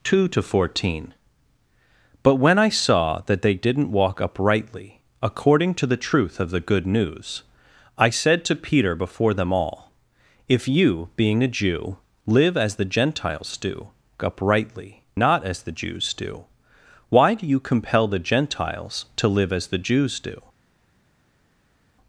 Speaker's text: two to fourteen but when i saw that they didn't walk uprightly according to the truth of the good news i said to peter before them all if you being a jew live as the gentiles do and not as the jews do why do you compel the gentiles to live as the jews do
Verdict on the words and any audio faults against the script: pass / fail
fail